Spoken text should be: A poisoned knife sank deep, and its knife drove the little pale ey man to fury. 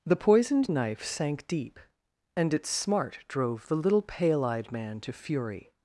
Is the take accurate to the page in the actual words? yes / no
no